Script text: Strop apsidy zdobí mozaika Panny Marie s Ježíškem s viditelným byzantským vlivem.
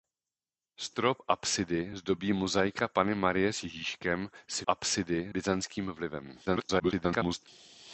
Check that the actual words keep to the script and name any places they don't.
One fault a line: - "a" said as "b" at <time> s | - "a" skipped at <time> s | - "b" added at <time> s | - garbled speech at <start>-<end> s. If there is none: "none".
- "viditelným" said as "apsidy" at 4.7 s
- garbled speech at 6.5-7.5 s